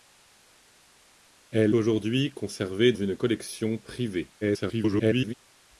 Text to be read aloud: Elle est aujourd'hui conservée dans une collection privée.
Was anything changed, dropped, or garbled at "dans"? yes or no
yes